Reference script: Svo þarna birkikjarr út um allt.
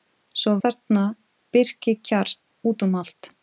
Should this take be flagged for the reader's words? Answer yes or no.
no